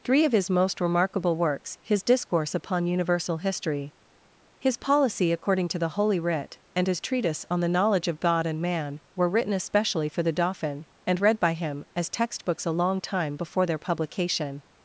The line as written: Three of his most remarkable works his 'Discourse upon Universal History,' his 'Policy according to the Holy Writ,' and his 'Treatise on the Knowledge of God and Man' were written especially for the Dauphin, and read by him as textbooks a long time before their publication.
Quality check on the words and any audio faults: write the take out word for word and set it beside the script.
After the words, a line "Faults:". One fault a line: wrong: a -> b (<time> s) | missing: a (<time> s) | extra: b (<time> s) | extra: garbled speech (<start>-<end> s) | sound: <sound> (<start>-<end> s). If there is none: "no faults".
Three of his most remarkable works his 'Discourse upon Universal History,' his 'Policy according to the Holy Writ,' and his 'Treatise on the Knowledge of God and Man' were written especially for the Dauphin, and read by him as textbooks a long time before their publication.
Faults:
no faults